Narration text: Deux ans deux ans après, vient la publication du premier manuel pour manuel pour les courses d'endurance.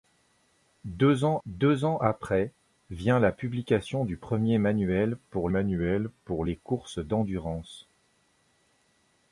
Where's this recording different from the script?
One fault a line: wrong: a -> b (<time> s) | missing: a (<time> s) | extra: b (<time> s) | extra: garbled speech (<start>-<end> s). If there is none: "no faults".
no faults